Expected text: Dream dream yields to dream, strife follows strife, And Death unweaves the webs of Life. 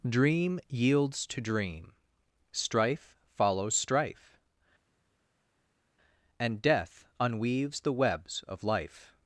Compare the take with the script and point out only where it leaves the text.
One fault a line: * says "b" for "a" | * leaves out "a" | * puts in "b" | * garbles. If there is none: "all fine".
* leaves out "dream"